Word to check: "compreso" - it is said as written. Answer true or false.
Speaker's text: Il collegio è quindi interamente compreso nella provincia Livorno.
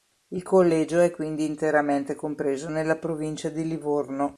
true